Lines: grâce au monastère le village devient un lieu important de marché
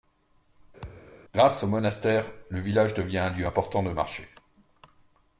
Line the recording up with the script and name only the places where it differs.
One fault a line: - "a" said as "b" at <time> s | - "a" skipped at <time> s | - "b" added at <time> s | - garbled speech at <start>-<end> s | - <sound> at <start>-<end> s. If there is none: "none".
- thud at 0.8-1.1 s